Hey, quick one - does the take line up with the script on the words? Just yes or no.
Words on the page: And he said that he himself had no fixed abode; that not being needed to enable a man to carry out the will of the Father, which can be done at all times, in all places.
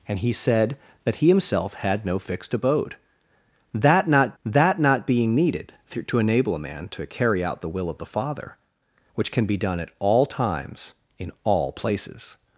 no